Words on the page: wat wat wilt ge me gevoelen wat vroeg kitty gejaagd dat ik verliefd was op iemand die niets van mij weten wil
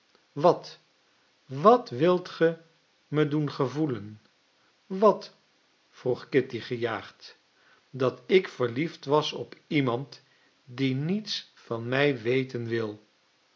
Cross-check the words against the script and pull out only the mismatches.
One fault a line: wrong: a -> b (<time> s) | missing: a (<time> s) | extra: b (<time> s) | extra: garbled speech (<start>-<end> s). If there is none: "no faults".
extra: doen (3.3 s)